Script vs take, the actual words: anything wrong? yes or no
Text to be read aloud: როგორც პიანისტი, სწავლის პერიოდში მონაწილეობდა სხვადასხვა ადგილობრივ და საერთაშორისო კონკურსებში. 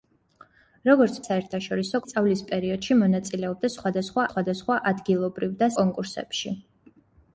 yes